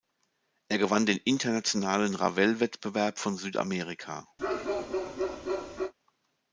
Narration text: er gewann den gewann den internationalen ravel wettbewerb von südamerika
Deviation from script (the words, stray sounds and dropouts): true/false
true